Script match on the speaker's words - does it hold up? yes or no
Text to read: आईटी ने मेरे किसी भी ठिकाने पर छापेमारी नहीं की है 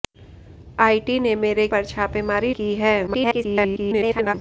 no